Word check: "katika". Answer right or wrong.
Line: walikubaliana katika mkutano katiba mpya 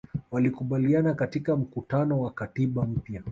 right